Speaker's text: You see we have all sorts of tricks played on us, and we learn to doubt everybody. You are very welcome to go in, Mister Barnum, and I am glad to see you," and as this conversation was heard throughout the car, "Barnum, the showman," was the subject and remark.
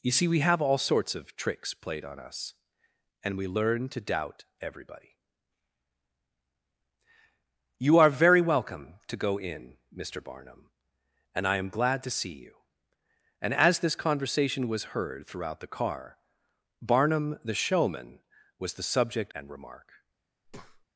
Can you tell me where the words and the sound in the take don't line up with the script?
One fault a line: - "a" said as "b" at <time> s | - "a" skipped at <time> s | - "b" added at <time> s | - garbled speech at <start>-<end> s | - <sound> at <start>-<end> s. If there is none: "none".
- breath at 20.4-20.9 s